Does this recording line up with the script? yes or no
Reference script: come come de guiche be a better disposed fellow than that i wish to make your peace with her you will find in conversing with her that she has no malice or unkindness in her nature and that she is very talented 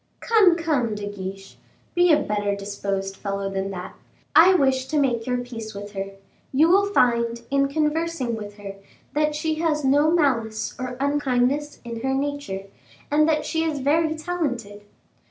yes